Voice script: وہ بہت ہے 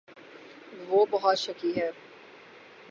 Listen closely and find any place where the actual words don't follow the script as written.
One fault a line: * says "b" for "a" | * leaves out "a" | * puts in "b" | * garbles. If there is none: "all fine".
* puts in "شکی"